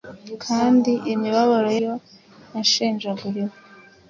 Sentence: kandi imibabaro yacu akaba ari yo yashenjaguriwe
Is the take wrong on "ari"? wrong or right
wrong